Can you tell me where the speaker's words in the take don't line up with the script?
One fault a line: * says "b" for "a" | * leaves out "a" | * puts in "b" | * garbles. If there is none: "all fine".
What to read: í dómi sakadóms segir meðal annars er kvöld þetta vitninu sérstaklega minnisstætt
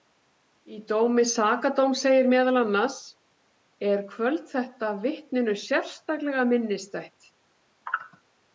all fine